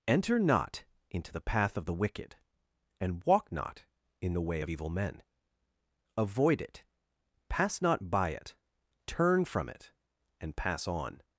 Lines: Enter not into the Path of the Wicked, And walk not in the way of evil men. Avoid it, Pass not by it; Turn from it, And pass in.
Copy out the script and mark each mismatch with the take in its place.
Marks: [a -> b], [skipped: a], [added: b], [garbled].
Enter not into the Path of the Wicked, And walk not in the way of evil men. Avoid it, Pass not by it; Turn from it, And pass [in. -> on]